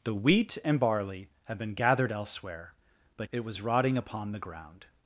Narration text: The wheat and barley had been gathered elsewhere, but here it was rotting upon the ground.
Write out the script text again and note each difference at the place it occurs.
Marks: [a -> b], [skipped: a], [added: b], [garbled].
The wheat and barley had been gathered elsewhere, but [skipped: here] it was rotting upon the ground.